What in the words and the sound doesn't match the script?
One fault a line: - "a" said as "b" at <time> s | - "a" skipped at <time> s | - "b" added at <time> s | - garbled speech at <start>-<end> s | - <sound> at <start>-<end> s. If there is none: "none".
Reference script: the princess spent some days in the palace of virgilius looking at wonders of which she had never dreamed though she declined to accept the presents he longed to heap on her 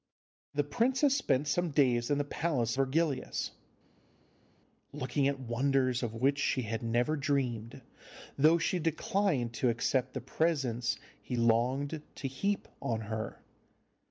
- "of" skipped at 2.8 s